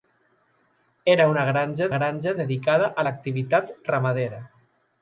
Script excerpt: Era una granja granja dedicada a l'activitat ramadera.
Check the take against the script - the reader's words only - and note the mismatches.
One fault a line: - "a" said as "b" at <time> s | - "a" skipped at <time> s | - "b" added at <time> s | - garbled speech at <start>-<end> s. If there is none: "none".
none